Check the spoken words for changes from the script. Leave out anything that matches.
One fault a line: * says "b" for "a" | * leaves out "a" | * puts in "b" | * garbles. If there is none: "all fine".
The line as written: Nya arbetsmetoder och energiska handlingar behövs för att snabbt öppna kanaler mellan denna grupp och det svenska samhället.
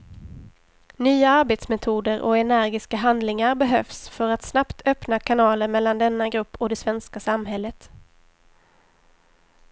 all fine